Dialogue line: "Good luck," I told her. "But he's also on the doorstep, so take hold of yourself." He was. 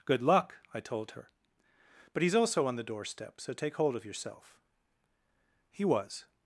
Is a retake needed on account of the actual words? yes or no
no